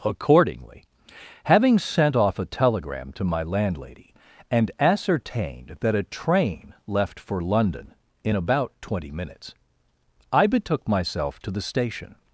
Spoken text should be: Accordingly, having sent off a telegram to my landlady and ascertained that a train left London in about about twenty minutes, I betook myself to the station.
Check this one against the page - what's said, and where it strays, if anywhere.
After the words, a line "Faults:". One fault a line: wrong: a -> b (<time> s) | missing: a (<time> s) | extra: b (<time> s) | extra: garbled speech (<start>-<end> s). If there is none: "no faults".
Accordingly, having sent off a telegram to my landlady and ascertained that a train left for London in about twenty minutes, I betook myself to the station.
Faults:
extra: for (7.2 s)
missing: about (8.7 s)